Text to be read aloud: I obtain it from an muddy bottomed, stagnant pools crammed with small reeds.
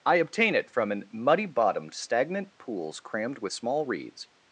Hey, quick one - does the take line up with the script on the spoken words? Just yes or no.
yes